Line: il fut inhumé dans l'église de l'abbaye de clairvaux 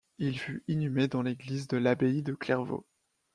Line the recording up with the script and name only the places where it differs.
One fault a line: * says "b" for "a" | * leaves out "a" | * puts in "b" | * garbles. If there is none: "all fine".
all fine